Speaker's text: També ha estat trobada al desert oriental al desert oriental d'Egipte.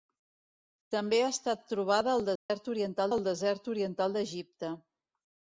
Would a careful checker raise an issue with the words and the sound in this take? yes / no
yes